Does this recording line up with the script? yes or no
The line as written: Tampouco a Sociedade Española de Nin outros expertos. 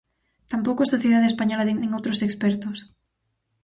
yes